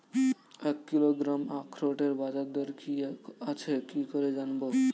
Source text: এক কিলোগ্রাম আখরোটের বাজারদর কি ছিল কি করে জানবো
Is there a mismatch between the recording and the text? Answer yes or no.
yes